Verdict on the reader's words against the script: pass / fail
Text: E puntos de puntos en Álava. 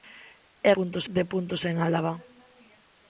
pass